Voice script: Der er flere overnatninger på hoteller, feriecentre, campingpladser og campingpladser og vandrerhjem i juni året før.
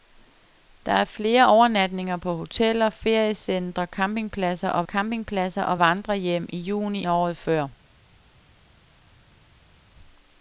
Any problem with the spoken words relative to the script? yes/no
no